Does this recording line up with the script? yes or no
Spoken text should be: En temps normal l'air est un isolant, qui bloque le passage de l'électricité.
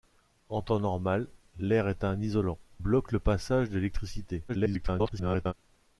no